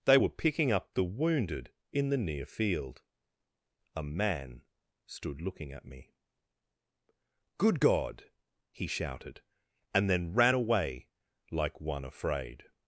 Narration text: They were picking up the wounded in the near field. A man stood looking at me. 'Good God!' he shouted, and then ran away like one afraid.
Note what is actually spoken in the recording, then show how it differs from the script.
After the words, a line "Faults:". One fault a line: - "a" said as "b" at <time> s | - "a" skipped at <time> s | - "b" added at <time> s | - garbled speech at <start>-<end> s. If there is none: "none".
They were picking up the wounded in the near field. A man stood looking at me. 'Good God!' he shouted, and then ran away like one afraid.
Faults:
none